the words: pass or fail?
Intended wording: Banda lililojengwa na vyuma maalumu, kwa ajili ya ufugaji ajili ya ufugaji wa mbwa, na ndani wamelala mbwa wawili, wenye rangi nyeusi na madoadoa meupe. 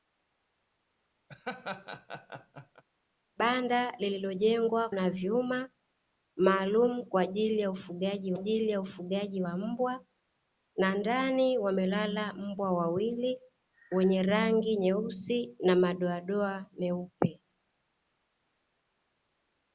pass